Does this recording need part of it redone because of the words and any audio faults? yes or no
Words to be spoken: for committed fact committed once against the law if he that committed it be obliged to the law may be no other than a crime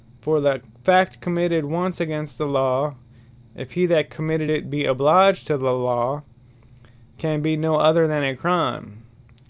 yes